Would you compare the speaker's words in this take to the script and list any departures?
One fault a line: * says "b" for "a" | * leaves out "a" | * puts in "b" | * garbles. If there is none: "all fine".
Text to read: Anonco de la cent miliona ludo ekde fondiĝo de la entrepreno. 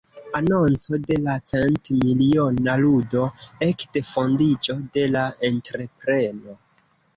all fine